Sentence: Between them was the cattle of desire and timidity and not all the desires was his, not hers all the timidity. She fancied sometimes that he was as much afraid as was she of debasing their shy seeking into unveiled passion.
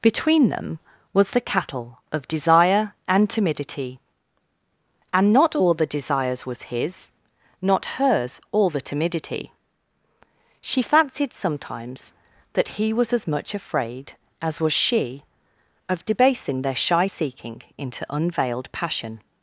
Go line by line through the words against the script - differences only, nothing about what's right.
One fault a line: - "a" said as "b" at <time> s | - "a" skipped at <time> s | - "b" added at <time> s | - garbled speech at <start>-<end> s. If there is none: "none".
none